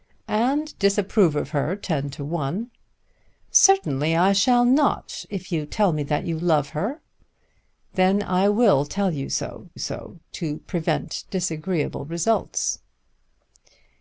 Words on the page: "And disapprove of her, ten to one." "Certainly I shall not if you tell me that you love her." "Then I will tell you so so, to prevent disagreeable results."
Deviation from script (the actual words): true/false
false